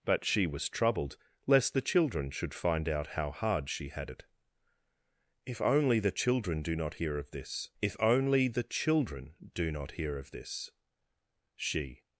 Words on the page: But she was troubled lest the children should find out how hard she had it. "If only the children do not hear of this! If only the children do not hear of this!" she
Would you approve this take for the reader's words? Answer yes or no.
yes